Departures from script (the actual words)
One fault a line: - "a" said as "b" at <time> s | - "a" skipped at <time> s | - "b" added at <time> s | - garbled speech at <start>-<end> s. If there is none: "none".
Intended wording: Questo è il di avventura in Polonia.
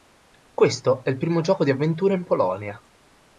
- "primo gioco" added at 1.2 s